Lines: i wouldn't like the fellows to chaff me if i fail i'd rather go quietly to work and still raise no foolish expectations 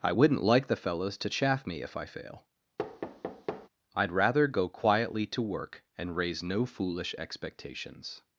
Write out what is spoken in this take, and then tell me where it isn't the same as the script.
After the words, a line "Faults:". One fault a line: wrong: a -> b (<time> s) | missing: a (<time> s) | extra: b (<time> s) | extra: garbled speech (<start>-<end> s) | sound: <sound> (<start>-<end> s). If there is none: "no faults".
i wouldn't like the fellows to chaff me if i fail i'd rather go quietly to work and raise no foolish expectations
Faults:
sound: thud (2.8-3.7 s)
missing: still (6.2 s)